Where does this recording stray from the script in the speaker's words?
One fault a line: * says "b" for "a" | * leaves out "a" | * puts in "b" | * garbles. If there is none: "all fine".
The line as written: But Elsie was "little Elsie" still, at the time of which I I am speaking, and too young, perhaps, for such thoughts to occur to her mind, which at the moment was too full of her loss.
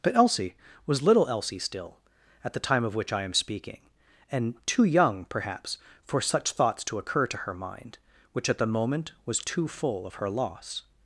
* leaves out "I"